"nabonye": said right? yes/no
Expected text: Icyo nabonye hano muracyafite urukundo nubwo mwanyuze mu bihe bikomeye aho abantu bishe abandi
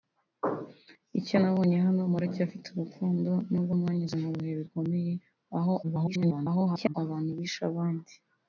yes